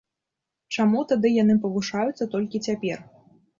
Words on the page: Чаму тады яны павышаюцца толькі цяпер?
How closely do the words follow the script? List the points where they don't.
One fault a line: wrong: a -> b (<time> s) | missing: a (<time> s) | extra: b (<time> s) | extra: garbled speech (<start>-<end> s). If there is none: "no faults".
no faults